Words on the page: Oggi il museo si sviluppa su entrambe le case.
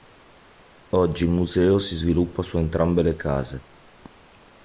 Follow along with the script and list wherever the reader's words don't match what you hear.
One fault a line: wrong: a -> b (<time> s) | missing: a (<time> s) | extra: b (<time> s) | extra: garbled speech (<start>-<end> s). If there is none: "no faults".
no faults